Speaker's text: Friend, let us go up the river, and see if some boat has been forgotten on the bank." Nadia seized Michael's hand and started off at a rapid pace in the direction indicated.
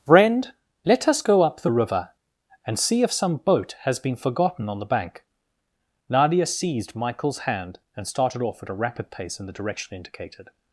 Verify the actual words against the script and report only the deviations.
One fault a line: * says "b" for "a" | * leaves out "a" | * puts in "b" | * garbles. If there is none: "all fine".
all fine